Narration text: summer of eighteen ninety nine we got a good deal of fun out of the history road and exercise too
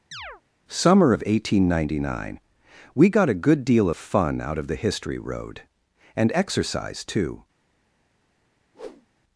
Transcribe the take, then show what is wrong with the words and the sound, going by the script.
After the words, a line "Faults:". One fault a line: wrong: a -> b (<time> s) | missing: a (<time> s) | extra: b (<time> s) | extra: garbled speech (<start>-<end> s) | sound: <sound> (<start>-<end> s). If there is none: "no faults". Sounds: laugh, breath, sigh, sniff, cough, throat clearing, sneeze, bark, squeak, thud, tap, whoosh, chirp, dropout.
summer of eighteen ninety nine we got a good deal of fun out of the history road and exercise too
Faults:
sound: chirp (0.1-0.4 s)
sound: whoosh (8.7-9.1 s)